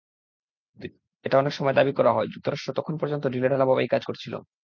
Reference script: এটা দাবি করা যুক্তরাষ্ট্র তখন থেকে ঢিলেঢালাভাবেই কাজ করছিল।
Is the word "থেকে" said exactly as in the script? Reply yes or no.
no